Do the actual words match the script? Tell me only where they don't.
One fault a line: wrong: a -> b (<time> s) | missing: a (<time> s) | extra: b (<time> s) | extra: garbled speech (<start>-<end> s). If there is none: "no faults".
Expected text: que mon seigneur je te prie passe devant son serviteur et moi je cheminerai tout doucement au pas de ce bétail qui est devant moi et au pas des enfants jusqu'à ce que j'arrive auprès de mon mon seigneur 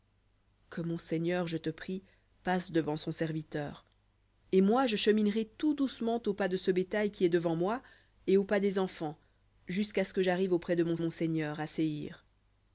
no faults